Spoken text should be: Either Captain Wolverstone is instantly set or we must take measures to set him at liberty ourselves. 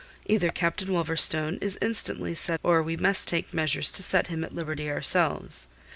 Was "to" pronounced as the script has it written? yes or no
yes